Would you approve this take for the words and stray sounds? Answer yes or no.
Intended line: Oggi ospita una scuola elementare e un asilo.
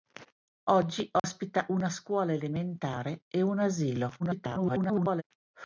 no